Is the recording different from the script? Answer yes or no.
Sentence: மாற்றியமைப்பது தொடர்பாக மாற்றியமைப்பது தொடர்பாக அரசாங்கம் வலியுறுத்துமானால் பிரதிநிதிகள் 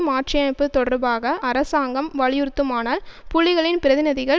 yes